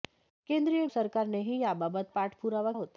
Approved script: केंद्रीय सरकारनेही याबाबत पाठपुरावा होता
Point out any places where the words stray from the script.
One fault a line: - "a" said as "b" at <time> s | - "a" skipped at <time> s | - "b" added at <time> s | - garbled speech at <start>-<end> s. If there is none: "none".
none